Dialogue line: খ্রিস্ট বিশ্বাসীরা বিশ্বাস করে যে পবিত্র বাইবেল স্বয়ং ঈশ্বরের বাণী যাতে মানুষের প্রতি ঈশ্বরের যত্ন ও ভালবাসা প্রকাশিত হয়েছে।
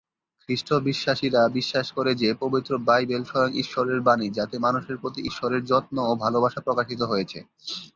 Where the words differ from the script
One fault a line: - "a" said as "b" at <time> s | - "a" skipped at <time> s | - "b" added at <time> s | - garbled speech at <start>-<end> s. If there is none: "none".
none